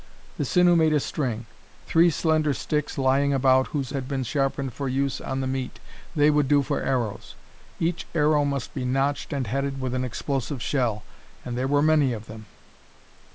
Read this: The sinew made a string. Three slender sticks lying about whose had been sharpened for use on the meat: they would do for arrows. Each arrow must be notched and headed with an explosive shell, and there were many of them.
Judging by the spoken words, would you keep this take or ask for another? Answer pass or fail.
pass